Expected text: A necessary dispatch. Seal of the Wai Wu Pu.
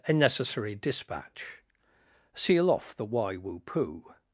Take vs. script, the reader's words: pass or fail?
fail